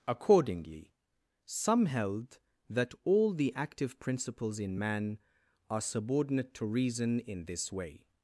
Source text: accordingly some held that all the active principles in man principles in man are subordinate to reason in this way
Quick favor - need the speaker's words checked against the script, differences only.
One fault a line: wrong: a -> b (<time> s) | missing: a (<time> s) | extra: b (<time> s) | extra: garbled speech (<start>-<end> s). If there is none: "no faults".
missing: principles in man (5.2 s)